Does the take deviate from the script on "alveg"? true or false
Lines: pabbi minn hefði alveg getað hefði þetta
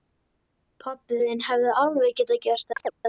false